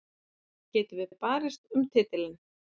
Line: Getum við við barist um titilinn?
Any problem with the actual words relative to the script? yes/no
no